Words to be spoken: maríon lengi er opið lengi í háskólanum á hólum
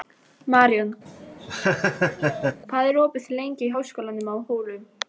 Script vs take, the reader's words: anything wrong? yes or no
yes